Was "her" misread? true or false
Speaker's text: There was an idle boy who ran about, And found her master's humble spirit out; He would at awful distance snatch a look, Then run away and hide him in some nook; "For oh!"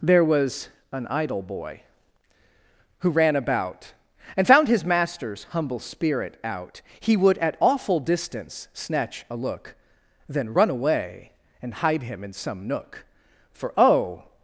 true